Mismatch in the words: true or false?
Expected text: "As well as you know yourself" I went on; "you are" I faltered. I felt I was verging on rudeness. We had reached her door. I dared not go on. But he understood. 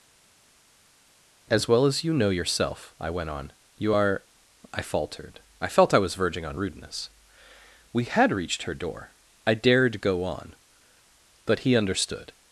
true